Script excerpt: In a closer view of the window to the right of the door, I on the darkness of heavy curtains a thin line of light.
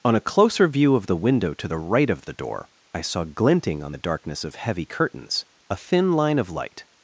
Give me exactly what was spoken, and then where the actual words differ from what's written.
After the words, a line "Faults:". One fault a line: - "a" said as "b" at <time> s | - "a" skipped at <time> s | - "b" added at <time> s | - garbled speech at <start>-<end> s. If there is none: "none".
On a closer view of the window to the right of the door, I saw glinting on the darkness of heavy curtains a thin line of light.
Faults:
- "In" said as "On" at 0.0 s
- "saw glinting" added at 3.0 s